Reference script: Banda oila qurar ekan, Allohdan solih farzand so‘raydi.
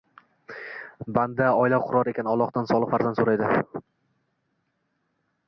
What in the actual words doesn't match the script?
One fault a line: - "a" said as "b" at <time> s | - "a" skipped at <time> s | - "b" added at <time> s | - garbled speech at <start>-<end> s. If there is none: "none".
none